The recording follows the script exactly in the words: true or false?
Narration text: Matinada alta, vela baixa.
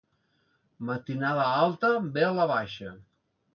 true